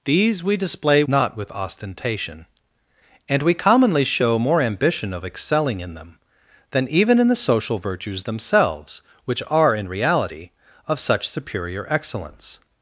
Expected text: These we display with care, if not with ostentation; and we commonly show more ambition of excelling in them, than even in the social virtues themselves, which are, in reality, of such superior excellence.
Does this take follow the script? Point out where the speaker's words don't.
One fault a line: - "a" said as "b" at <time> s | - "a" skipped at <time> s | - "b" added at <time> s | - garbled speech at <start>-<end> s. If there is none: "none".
- "with care if" skipped at 1.0 s